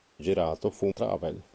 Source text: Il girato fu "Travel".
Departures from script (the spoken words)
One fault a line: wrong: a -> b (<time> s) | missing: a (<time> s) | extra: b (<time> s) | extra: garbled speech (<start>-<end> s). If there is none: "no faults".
no faults